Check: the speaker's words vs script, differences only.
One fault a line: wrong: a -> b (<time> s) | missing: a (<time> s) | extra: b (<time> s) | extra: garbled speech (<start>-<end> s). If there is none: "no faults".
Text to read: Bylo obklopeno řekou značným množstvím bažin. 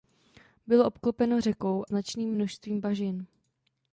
no faults